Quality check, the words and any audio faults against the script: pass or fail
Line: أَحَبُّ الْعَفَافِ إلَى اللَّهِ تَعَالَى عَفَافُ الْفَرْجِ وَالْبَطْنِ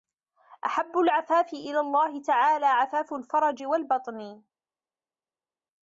pass